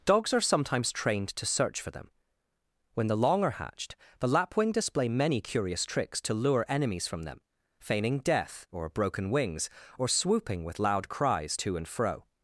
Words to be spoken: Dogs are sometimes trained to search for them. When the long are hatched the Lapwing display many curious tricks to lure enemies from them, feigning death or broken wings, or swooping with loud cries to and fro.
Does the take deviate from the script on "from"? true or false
false